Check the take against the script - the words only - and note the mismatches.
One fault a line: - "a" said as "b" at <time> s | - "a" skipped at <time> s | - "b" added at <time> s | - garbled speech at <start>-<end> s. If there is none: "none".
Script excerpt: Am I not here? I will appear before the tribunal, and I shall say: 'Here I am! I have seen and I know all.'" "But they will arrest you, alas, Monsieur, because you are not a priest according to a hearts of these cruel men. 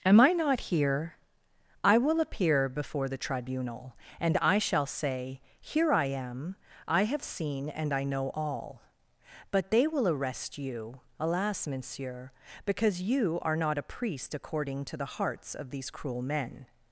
- "a" said as "the" at 15.0 s